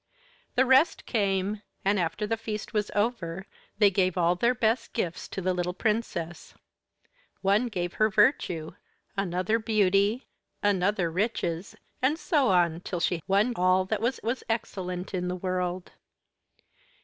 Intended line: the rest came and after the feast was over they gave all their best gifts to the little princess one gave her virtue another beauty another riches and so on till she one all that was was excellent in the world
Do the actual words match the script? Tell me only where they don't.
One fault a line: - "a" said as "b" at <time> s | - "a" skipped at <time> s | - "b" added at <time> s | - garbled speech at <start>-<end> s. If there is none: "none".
none